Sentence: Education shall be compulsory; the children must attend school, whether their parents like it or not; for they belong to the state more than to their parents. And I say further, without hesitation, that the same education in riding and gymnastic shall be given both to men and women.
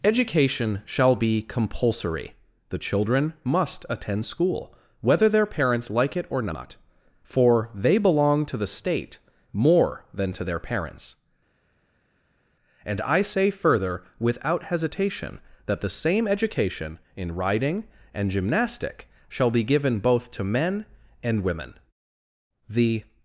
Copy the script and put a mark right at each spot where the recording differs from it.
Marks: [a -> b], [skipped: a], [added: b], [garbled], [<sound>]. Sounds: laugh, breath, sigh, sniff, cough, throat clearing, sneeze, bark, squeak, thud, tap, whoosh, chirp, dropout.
Education shall be compulsory; the children must attend school, whether their parents like it or not; for they belong to the state more than to their parents. And I say further, without hesitation, that the same education in riding and gymnastic shall be given both to men and women. [added: The]